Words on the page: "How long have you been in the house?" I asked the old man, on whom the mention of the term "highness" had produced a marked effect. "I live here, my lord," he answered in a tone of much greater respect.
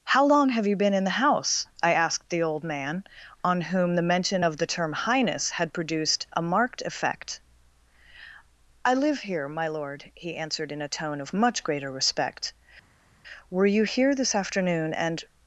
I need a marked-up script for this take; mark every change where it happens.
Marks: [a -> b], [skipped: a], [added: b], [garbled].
"How long have you been in the house?" I asked the old man, on whom the mention of the term "highness" had produced a marked effect. "I live here, my lord," he answered in a tone of much greater respect. [added: Were you here this afternoon and]